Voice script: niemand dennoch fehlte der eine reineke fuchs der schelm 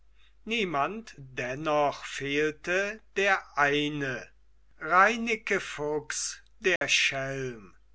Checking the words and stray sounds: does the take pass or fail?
fail